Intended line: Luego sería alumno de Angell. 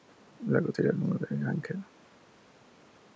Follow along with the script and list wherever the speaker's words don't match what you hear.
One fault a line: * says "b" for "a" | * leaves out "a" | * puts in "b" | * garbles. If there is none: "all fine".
all fine